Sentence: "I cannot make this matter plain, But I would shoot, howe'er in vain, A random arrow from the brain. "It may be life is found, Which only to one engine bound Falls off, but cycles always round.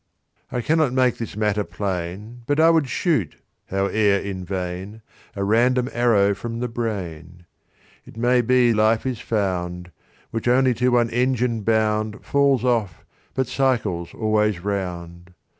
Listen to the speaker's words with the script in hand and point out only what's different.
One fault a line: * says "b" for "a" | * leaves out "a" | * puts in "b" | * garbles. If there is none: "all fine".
all fine